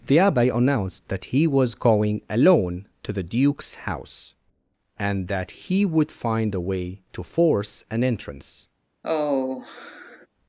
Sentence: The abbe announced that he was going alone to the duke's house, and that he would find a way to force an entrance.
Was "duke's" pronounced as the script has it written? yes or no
yes